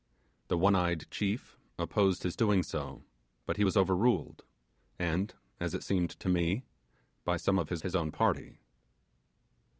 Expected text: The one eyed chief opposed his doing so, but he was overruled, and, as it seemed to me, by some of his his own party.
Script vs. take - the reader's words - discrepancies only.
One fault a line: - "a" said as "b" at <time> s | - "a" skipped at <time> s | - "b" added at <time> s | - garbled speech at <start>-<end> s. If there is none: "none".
none